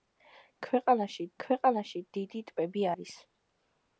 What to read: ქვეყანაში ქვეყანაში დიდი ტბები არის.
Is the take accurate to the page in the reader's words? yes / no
yes